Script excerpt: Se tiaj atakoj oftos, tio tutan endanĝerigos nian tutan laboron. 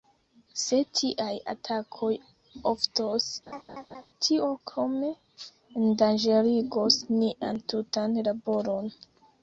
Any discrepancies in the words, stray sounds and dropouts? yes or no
yes